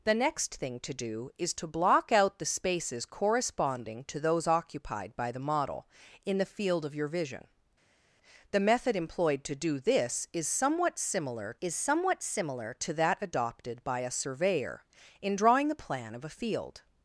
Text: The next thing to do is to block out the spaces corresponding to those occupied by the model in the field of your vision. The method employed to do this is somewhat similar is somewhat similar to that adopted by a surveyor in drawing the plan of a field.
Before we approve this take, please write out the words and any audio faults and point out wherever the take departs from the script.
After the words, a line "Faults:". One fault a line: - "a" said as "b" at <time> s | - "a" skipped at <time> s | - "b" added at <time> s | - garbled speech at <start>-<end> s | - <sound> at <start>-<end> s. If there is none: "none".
The next thing to do is to block out the spaces corresponding to those occupied by the model in the field of your vision. The method employed to do this is somewhat similar is somewhat similar to that adopted by a surveyor in drawing the plan of a field.
Faults:
none